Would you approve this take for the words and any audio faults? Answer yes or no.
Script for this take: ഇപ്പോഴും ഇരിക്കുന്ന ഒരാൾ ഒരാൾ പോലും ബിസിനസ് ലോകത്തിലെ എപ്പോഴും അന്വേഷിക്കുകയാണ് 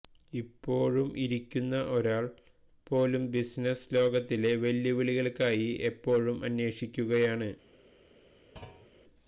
no